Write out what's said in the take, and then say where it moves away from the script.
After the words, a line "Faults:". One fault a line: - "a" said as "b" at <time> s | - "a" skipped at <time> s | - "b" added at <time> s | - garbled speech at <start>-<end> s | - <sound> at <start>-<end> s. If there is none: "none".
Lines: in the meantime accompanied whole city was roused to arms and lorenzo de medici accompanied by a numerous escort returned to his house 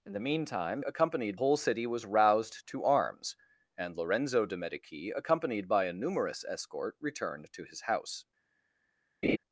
in the meantime accompanied whole city was roused to arms and lorenzo de medici accompanied by a numerous escort returned to his house
Faults:
- laugh at 9.2-9.4 s